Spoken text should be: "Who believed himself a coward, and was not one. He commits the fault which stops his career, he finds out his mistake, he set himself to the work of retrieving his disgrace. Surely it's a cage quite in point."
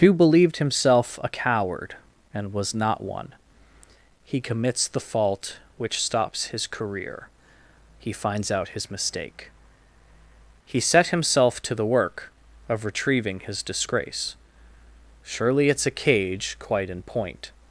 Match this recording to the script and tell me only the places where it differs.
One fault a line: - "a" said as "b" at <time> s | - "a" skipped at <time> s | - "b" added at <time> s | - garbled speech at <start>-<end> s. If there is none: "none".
none